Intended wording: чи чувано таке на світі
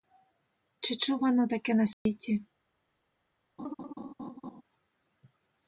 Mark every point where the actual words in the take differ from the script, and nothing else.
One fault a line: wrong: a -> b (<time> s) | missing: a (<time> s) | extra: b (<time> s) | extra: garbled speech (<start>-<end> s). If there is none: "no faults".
no faults